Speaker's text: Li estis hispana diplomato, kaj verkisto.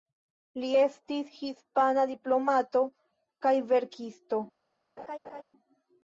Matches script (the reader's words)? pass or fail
pass